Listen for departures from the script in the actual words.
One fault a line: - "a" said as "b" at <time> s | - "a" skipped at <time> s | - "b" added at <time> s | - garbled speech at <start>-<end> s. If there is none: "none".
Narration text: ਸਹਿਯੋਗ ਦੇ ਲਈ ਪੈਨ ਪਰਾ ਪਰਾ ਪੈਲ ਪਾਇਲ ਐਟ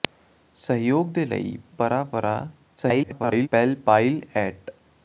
- "ਪੈਨ" skipped at 1.6 s
- garbled speech at 2.8-3.5 s